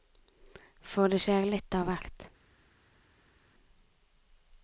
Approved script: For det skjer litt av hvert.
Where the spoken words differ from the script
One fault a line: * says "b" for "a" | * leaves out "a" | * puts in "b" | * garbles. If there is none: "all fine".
all fine